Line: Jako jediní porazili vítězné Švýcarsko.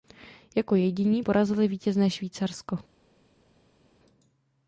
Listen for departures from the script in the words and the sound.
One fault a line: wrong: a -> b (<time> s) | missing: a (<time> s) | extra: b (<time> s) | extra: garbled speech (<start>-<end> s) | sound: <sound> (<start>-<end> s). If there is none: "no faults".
no faults